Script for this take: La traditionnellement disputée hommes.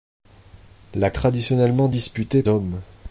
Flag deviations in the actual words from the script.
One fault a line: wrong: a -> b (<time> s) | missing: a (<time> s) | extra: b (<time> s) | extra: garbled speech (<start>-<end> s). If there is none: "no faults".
no faults